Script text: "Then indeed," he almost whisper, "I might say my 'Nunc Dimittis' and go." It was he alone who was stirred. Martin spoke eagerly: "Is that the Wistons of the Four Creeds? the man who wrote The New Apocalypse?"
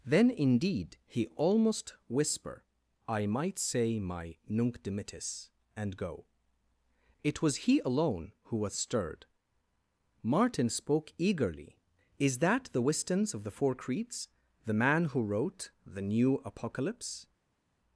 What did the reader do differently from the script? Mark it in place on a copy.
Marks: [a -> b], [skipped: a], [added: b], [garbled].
"Then indeed," he almost whisper, "I might say my 'Nunc Dimittis' and go." It was he alone who was stirred. Martin spoke eagerly: "Is that the Wistons of the Four Creeds? the man who wrote The New Apocalypse?"